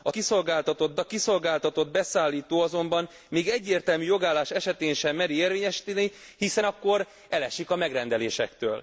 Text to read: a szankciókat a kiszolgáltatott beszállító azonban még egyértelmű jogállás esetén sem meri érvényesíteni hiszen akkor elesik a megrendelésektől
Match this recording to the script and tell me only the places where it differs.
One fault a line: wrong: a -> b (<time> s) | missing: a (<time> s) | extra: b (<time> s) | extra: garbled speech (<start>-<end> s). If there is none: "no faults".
wrong: szankciókat -> kiszolgáltatott (0.1 s)